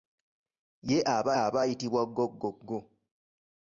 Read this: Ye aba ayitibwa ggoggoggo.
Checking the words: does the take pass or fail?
fail